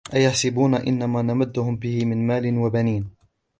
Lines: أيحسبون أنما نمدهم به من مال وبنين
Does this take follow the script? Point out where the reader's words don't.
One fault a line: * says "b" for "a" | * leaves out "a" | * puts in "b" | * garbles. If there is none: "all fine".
all fine